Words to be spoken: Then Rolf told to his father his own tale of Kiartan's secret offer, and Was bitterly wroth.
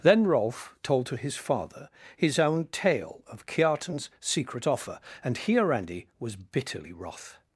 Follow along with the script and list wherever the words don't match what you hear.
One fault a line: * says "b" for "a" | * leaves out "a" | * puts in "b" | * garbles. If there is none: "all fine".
* puts in "Hiarandi"